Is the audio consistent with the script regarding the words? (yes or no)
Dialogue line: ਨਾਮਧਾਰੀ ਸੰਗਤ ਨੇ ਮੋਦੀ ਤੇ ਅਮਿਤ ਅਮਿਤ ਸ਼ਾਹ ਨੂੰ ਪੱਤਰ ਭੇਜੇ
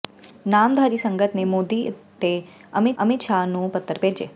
yes